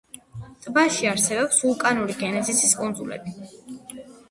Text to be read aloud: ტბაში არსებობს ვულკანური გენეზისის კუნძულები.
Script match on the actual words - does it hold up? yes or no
yes